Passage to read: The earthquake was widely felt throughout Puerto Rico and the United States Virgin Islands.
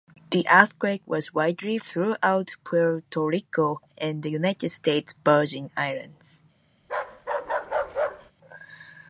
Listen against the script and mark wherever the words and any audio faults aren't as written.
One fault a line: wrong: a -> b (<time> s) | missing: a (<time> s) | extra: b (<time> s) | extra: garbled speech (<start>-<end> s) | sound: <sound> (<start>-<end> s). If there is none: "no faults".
missing: felt (1.8 s)
sound: bark (6.8-8.3 s)